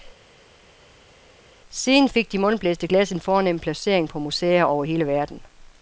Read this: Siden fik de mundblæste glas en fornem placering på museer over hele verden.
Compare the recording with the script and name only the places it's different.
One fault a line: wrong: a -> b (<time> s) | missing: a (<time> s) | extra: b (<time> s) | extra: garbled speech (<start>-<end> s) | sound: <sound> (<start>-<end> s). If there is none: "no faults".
no faults